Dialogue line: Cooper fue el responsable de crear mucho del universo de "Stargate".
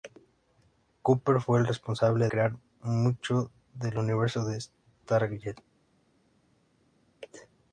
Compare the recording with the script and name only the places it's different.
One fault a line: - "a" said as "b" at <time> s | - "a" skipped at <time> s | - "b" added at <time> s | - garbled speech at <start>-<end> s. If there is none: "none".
- "de" skipped at 2.3 s